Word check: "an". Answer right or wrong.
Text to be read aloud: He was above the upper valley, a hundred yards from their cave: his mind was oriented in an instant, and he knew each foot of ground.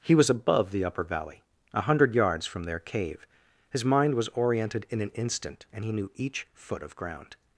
right